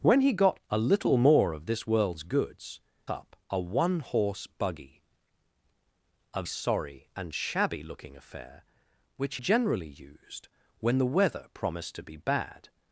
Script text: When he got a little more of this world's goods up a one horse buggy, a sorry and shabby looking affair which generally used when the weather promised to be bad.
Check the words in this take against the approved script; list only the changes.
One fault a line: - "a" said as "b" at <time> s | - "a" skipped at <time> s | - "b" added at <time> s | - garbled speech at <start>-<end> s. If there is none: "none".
none